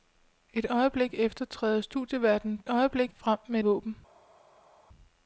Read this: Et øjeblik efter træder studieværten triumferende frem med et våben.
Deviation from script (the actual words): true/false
true